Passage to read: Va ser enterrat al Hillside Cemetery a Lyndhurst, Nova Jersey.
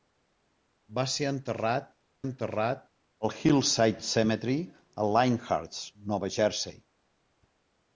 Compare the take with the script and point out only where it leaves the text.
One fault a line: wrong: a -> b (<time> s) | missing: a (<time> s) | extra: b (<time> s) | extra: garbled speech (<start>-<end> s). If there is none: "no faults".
extra: enterrat (2.2 s)